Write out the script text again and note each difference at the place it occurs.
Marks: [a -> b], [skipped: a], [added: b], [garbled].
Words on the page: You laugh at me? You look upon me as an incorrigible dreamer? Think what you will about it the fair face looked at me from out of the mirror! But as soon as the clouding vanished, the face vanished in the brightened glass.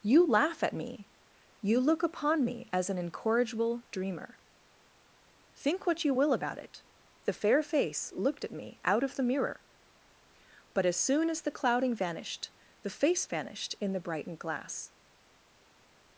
You laugh at me? You look upon me as an incorrigible dreamer? Think what you will about it the fair face looked at me [skipped: from] out of the mirror! But as soon as the clouding vanished, the face vanished in the brightened glass.